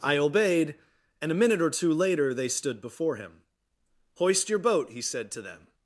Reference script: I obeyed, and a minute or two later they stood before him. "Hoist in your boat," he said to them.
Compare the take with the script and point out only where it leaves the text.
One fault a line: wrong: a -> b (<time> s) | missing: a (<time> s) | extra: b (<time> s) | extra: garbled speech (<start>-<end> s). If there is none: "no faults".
missing: in (4.5 s)